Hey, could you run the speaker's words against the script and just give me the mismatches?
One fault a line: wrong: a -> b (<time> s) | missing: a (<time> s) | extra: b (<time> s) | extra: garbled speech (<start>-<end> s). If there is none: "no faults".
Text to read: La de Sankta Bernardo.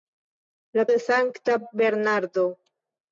no faults